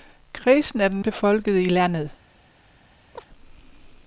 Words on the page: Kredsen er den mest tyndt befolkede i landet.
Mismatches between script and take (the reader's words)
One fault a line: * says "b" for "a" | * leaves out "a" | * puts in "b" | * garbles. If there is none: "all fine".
* leaves out "mest tyndt"